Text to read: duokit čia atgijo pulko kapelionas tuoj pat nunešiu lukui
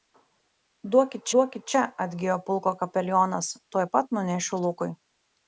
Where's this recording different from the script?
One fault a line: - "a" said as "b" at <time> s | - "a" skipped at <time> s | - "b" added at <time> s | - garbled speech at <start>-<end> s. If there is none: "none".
- "duokit" added at 1.4 s